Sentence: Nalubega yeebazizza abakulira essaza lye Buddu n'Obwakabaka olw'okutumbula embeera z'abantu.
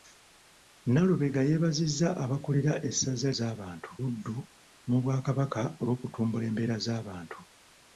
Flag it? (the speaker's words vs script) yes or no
yes